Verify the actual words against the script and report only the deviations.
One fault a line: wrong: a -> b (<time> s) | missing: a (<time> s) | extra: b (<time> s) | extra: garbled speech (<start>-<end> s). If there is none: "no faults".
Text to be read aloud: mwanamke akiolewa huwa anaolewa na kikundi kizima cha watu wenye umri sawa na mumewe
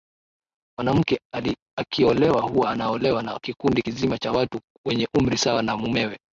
no faults